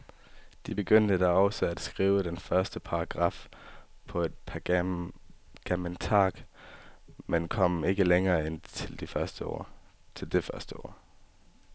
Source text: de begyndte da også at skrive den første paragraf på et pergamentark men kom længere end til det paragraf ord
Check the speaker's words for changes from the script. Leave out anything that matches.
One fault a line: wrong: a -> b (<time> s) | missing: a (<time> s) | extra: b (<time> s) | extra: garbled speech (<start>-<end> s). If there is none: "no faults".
extra: ikke (7.8 s)
wrong: paragraf -> første (9.1 s)